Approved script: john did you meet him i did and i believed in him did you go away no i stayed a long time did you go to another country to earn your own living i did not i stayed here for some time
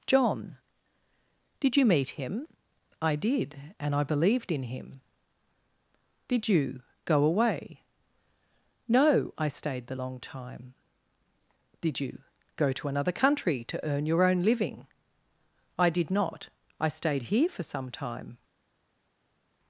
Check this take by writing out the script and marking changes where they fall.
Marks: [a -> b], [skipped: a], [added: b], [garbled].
john did you meet him i did and i believed in him did you go away no i stayed [a -> the] long time did you go to another country to earn your own living i did not i stayed here for some time